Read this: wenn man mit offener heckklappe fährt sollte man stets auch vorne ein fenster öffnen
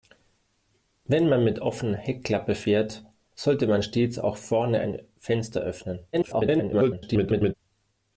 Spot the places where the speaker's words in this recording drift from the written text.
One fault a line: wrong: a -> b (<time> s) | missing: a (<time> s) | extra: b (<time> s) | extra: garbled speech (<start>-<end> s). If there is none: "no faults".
extra: garbled speech (6.1-7.5 s)